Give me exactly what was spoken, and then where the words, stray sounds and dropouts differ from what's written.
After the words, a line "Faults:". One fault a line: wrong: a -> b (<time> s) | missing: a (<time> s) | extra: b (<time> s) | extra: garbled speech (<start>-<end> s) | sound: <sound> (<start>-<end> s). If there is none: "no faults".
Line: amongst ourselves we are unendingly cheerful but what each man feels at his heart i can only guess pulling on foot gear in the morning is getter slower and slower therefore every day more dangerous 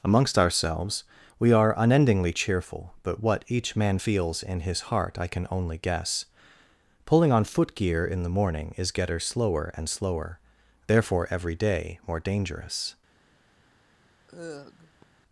amongst ourselves we are unendingly cheerful but what each man feels in his heart i can only guess pulling on foot gear in the morning is getter slower and slower therefore every day more dangerous
Faults:
wrong: at -> in (4.4 s)
sound: sigh (14.3-15.0 s)